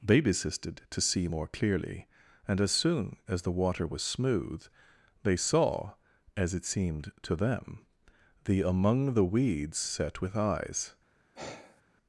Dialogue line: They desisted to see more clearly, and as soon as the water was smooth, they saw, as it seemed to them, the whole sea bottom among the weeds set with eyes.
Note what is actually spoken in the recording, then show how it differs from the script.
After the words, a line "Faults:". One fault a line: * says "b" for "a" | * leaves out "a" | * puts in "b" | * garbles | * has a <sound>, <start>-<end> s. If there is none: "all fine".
They desisted to see more clearly, and as soon as the water was smooth, they saw, as it seemed to them, the among the weeds set with eyes.
Faults:
* leaves out "whole sea bottom"
* has a sigh, 11.3-11.8 s